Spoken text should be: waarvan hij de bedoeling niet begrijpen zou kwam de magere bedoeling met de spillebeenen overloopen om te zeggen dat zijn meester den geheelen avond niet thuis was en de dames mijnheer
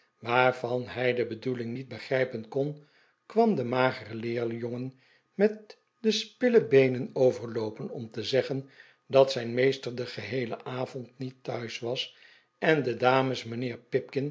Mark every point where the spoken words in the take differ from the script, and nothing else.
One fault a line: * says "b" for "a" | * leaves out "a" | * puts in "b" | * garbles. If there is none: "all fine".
* says "kon" for "zou"
* says "leerjongen" for "bedoeling"